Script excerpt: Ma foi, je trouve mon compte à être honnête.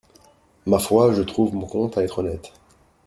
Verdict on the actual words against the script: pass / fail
pass